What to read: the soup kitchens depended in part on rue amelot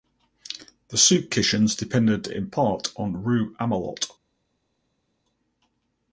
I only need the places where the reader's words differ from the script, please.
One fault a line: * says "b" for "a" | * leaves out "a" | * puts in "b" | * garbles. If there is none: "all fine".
all fine